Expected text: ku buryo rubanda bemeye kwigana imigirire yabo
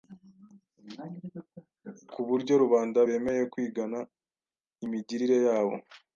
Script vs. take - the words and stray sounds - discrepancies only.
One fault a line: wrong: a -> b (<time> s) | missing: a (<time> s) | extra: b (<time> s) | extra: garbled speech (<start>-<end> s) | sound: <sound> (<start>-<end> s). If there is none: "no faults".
no faults